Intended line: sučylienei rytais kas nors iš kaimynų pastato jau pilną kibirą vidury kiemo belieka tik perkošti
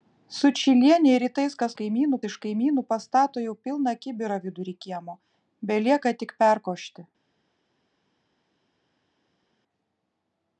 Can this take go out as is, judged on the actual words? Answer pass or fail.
fail